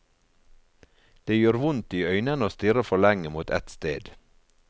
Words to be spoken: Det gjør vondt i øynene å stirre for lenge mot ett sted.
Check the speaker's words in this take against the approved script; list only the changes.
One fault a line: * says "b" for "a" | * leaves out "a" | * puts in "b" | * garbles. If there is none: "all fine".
all fine